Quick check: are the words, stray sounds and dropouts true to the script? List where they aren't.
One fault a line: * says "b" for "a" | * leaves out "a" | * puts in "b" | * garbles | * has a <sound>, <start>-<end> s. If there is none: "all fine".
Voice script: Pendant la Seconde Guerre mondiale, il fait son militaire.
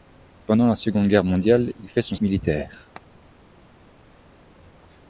all fine